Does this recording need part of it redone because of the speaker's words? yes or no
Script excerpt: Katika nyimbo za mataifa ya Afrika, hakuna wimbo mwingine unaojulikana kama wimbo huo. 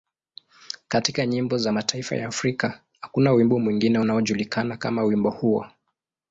no